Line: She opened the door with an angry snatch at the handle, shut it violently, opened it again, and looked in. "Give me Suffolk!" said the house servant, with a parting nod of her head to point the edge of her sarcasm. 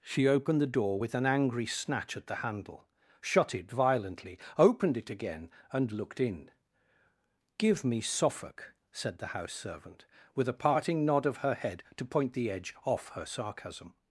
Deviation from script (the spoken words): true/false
true